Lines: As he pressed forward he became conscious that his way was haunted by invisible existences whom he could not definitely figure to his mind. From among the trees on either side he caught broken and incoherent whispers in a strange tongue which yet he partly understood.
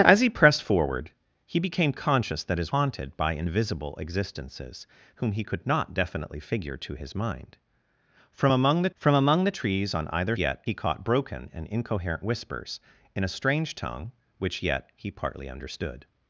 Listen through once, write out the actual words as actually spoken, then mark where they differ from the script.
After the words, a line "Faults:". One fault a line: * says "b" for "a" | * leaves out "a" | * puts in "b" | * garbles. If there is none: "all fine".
As he pressed forward he became conscious that his haunted by invisible existences whom he could not definitely figure to his mind. From among the from among the trees on either yet he caught broken and incoherent whispers in a strange tongue which yet he partly understood.
Faults:
* leaves out "way was"
* puts in "from among the"
* says "yet" for "side"